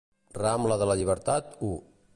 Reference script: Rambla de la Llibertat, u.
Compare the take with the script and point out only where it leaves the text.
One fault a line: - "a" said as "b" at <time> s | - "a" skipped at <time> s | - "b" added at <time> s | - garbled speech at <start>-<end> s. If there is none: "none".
none